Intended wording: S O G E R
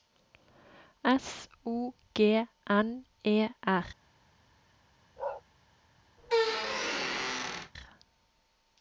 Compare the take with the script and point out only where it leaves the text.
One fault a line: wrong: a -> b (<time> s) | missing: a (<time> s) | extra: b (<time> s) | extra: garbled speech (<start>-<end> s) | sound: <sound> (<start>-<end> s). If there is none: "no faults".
extra: N (2.7 s)
sound: bark (5.2-5.4 s)
sound: squeak (6.2-7.7 s)